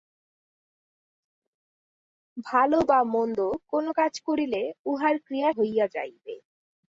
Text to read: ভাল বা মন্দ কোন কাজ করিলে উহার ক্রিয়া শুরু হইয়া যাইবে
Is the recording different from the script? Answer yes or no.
yes